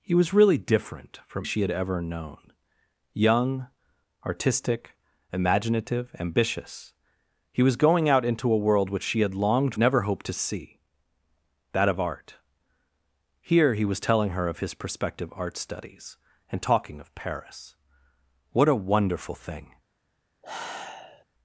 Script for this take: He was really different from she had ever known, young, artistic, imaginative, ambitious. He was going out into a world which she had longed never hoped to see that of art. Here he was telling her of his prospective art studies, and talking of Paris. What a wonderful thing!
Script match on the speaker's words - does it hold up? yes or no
yes